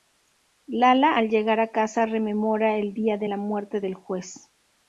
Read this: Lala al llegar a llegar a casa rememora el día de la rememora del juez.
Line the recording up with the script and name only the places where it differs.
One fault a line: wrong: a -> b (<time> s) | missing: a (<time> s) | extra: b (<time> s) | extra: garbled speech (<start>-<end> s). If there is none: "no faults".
missing: llegar a (1.7 s)
wrong: rememora -> muerte (3.4 s)